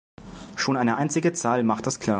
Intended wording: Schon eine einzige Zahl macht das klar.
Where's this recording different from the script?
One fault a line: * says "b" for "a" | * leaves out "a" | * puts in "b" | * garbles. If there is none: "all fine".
all fine